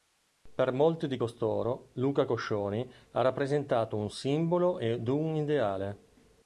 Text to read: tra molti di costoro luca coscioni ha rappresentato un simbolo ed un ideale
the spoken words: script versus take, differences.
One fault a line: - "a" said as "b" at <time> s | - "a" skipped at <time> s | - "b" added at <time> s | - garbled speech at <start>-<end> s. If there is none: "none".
- "tra" said as "per" at 0.6 s